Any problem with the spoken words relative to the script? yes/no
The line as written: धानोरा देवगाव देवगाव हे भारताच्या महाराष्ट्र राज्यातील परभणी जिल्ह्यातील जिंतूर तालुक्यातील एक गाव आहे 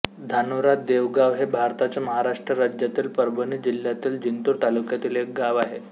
yes